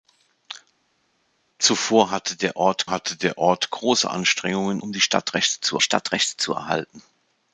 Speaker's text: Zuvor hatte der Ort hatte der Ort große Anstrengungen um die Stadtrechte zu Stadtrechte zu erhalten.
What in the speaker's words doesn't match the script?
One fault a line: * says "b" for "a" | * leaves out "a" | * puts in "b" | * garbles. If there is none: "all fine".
all fine